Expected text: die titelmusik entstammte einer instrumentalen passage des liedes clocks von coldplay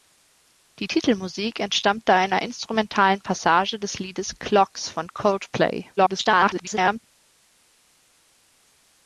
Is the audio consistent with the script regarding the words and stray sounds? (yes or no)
no